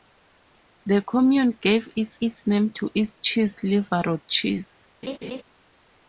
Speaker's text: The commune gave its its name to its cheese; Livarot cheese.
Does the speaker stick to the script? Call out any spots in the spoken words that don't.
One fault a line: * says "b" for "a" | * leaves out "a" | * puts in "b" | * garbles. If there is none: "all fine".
all fine